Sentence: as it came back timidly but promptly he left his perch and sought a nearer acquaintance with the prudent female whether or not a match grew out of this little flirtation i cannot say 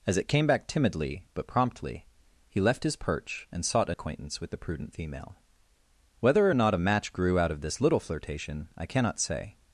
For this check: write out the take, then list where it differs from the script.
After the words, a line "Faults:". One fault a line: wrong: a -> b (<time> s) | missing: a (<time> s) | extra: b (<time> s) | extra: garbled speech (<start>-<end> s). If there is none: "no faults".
as it came back timidly but promptly he left his perch and sought a acquaintance with the prudent female whether or not a match grew out of this little flirtation i cannot say
Faults:
missing: nearer (4.0 s)